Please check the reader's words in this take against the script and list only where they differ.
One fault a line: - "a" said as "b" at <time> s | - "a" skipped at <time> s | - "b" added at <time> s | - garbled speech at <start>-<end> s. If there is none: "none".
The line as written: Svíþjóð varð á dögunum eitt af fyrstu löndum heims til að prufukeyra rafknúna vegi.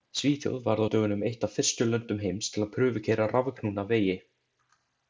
none